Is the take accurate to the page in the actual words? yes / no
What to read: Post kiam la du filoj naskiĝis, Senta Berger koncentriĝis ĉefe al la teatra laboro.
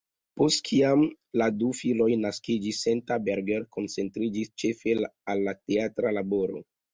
yes